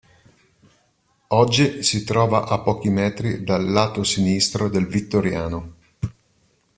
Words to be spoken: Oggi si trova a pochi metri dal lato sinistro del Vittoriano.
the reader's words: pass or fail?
pass